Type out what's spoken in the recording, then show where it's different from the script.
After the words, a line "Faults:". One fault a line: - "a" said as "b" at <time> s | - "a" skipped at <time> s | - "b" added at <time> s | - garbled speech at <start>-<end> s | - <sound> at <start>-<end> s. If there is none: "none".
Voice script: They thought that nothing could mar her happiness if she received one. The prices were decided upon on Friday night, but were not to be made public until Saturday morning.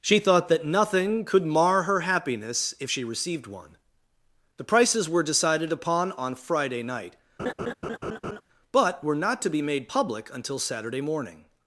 She thought that nothing could mar her happiness if she received one. The prices were decided upon on Friday night, but were not to be made public until Saturday morning.
Faults:
- "They" said as "She" at 0.0 s
- laugh at 7.4-8.4 s